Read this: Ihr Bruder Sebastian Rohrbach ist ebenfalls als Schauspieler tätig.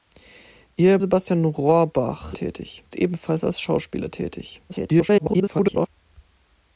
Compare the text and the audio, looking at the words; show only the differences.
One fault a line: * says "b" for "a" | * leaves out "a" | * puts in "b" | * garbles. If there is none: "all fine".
* leaves out "Bruder"
* says "tätig" for "ist"
* garbles